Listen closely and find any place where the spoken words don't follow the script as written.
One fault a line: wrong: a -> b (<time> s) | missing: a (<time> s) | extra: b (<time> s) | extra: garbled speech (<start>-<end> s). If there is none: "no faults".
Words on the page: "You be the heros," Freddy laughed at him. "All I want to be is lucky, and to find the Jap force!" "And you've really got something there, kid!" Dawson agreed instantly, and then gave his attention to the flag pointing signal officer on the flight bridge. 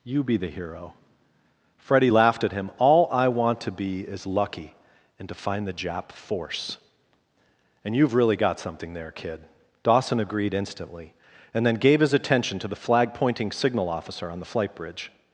wrong: heros -> hero (0.5 s)